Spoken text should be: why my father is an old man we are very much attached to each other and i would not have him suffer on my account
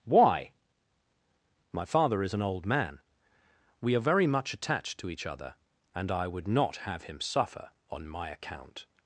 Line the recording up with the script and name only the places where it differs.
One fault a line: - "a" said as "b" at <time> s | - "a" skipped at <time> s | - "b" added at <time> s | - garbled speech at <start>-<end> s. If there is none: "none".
none